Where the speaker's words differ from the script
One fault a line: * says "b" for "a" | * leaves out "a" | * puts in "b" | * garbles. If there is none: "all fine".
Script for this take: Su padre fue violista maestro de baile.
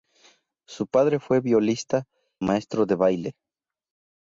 all fine